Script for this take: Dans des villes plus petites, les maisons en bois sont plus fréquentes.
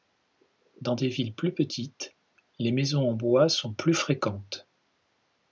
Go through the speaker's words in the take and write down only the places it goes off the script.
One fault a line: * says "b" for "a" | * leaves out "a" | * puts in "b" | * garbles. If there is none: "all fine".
all fine